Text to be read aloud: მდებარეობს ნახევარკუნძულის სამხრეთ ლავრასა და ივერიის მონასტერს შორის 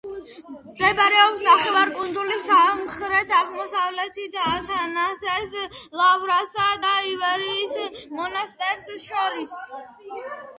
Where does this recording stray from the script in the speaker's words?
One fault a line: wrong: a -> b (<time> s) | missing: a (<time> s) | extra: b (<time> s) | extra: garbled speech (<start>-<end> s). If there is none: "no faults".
extra: აღმოსავლეთით ათანასეს (3.4 s)